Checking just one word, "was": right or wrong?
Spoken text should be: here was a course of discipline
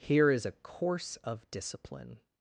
wrong